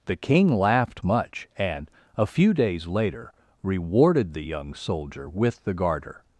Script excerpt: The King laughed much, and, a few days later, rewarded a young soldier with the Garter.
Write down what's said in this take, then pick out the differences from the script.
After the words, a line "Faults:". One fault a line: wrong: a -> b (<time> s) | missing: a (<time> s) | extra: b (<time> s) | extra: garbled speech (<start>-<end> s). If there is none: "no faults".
The King laughed much, and, a few days later, rewarded the young soldier with the Garter.
Faults:
wrong: a -> the (4.3 s)